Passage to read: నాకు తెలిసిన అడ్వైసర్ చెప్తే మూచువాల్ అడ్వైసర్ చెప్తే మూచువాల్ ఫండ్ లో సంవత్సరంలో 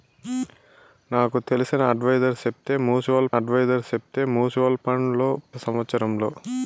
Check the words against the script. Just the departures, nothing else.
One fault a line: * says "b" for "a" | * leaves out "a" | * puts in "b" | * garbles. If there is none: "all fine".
all fine